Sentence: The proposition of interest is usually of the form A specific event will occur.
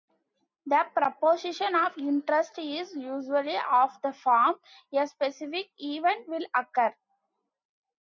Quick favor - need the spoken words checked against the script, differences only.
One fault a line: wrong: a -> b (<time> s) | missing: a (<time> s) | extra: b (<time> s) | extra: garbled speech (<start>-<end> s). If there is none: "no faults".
no faults